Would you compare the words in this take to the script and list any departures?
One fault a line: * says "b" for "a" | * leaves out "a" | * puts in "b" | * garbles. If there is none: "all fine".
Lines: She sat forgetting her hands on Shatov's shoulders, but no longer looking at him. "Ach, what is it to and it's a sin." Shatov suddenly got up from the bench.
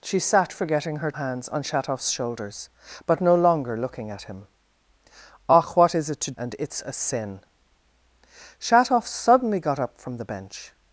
all fine